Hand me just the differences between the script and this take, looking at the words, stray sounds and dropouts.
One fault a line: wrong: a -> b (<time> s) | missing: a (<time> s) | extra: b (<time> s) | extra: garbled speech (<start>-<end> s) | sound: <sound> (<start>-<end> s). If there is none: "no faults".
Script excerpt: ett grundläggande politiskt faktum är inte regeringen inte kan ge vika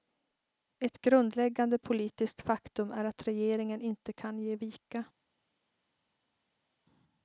wrong: inte -> att (3.0 s)